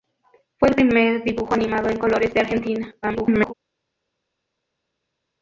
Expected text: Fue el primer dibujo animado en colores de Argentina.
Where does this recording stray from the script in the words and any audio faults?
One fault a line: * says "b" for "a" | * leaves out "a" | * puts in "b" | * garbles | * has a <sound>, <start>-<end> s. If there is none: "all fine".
* garbles